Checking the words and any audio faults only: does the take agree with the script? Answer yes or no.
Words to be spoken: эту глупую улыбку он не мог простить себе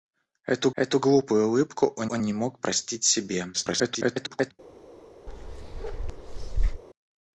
no